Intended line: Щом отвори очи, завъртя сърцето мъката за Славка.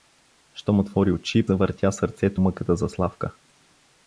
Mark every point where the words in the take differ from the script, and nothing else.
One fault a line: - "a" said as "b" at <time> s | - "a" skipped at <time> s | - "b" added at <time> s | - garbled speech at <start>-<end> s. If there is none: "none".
none